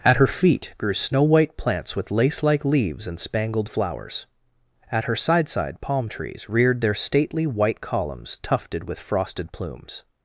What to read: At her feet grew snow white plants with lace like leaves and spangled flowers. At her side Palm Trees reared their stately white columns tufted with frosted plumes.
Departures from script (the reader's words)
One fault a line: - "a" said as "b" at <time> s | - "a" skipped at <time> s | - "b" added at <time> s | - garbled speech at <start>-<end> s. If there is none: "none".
- "side" added at 5.5 s